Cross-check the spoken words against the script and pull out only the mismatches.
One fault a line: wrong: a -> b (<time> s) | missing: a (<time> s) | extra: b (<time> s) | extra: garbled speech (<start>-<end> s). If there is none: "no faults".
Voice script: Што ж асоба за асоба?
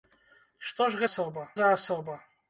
no faults